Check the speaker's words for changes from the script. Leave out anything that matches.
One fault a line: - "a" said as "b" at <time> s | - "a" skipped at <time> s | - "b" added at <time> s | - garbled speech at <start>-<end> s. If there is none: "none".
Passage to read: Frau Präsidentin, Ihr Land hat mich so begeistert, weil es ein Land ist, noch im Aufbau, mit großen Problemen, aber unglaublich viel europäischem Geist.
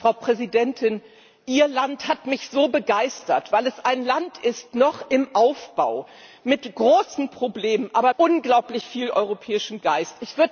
none